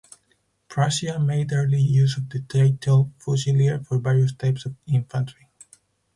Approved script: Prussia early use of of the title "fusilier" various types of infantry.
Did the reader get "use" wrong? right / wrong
right